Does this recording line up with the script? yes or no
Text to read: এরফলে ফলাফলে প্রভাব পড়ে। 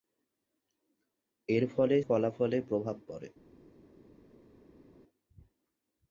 yes